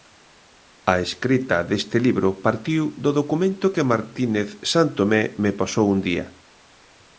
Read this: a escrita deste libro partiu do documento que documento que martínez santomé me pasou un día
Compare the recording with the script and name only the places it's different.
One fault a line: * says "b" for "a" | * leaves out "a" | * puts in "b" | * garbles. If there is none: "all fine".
* leaves out "documento que"